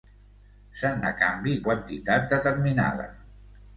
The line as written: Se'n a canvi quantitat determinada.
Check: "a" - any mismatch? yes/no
no